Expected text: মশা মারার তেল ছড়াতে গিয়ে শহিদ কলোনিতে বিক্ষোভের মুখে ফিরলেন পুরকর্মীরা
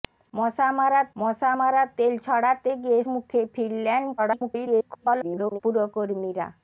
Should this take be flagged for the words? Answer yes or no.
yes